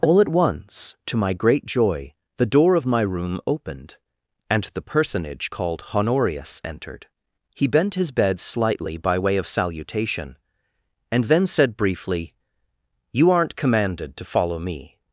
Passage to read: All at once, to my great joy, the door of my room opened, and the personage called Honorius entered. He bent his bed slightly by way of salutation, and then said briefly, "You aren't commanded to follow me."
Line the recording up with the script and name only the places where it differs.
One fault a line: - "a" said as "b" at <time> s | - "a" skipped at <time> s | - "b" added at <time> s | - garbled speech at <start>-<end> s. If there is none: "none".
none